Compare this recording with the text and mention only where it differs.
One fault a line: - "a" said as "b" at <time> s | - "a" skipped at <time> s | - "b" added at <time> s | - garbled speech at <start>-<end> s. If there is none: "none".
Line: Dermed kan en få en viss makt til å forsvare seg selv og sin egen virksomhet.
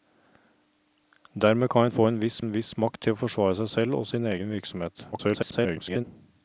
- "en viss" added at 2.4 s
- garbled speech at 5.1-6.0 s